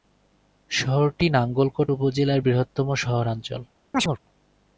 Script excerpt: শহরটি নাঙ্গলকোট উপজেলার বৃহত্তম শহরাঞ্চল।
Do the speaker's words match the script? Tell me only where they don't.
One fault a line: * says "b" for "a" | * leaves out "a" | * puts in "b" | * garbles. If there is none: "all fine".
all fine